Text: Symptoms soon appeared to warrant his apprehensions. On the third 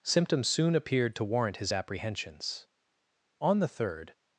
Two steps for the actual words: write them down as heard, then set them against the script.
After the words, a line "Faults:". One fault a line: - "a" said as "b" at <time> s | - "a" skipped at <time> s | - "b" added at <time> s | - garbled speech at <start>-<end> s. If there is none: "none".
Symptoms soon appeared to warrant his apprehensions. On the third
Faults:
none